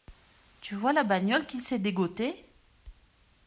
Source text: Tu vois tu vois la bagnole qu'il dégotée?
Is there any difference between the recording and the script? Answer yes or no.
yes